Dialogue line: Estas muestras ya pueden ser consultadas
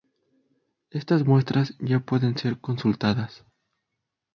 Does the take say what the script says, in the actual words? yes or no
yes